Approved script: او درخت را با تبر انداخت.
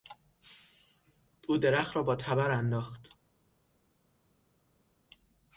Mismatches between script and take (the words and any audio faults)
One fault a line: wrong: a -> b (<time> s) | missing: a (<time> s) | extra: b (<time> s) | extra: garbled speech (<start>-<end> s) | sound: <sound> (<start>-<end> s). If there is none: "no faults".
no faults